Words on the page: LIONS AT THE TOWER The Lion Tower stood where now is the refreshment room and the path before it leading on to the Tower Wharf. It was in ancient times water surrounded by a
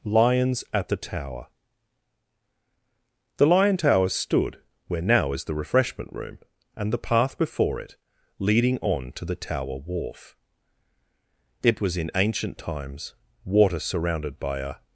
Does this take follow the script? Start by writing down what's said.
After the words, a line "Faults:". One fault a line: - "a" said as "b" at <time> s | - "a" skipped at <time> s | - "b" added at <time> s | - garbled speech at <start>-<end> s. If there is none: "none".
LIONS AT THE TOWER The Lion Tower stood where now is the refreshment room and the path before it leading on to the Tower Wharf. It was in ancient times water surrounded by a
Faults:
none